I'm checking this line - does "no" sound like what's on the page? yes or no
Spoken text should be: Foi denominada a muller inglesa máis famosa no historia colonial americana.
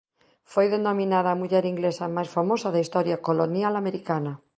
no